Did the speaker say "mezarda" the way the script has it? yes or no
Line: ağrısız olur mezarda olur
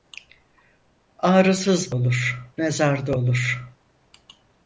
yes